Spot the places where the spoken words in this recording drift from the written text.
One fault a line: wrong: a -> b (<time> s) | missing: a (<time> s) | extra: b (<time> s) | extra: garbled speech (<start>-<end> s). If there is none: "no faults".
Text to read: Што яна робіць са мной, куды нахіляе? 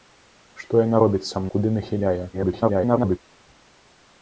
missing: мной (1.4 s)
extra: garbled speech (2.3-3.2 s)